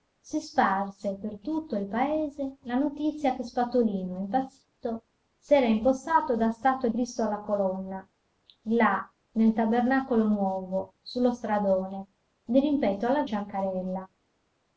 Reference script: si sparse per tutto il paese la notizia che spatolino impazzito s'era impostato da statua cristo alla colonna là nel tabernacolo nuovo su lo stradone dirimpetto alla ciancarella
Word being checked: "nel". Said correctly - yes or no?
yes